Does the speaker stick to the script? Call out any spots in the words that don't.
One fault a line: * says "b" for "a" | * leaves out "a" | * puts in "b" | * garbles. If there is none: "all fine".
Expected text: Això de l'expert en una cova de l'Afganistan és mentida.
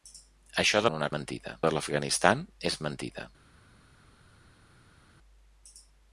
* leaves out "l'expert"
* says "mentida" for "cova"